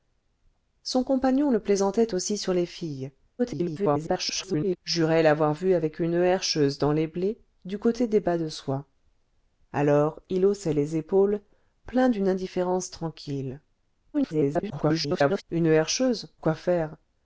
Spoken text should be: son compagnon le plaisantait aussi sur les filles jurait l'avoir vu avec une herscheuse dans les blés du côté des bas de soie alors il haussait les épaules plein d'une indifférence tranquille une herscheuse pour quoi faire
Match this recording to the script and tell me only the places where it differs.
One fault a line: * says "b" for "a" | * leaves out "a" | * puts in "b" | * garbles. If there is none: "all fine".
* garbles
* garbles
* leaves out "pour"